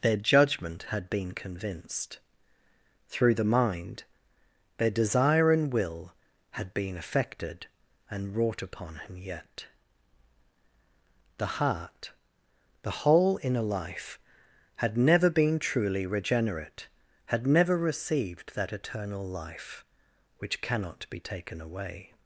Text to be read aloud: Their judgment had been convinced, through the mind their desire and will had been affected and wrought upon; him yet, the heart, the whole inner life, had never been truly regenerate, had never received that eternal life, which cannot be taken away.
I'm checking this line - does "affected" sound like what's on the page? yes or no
yes